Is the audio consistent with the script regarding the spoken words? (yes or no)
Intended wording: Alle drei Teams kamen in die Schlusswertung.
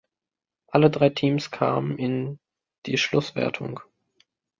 yes